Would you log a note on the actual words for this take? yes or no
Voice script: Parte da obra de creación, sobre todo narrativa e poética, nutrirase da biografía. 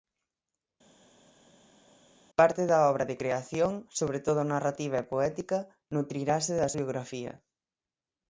no